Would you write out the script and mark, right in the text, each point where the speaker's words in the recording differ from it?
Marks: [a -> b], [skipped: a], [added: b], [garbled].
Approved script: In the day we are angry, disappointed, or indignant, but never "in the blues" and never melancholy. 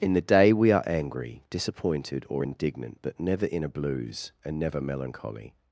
In the day we are angry, disappointed, or indignant, but never "in [the -> a] blues" and never melancholy.